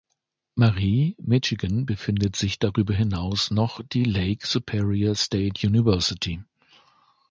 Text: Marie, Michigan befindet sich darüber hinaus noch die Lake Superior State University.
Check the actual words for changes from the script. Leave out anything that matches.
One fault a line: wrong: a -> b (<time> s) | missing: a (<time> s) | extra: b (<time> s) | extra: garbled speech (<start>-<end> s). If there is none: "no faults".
no faults